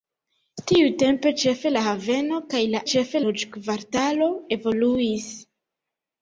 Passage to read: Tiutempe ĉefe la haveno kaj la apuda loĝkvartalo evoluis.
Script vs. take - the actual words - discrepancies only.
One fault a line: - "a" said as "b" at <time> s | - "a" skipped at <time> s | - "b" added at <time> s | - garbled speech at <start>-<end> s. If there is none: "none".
- "apuda" said as "ĉefe" at 2.9 s